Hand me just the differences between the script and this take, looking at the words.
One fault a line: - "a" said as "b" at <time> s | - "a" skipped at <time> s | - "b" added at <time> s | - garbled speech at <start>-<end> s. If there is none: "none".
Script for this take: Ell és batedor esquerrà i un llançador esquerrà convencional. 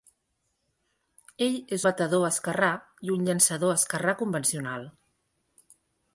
none